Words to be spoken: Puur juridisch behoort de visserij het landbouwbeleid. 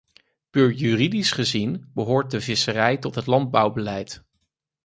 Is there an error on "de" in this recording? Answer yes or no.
no